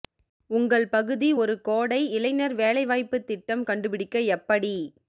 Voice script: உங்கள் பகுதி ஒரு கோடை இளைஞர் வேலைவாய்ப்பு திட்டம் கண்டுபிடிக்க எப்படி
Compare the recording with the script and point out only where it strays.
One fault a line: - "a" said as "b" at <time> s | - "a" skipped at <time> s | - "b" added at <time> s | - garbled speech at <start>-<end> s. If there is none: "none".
none